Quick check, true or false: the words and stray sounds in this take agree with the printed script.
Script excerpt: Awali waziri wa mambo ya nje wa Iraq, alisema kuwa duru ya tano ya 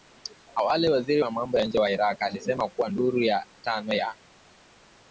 true